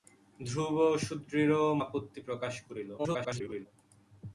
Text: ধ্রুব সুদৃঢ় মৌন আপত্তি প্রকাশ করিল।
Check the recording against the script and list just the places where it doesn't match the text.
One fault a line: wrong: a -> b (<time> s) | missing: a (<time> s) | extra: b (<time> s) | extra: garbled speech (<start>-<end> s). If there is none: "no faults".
missing: মৌন (1.6 s)
extra: garbled speech (3.0-3.7 s)